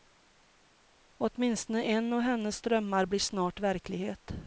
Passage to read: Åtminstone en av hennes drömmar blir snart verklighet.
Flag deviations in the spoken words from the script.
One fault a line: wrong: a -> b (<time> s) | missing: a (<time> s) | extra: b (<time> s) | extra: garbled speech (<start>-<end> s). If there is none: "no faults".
no faults